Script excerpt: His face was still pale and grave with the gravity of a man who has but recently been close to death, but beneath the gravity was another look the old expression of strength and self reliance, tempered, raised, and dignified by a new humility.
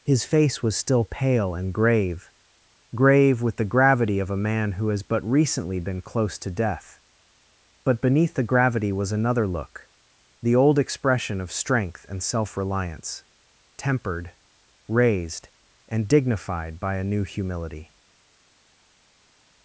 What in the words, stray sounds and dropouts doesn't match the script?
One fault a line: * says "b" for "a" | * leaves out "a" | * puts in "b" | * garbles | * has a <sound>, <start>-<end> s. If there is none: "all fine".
* puts in "grave"